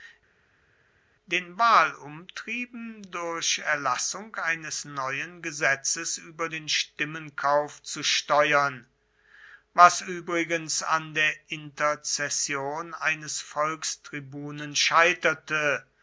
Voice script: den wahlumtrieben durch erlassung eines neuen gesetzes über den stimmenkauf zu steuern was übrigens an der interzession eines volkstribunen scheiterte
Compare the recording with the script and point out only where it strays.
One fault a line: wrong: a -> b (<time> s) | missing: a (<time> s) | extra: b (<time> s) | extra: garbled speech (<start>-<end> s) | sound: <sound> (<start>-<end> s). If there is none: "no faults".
no faults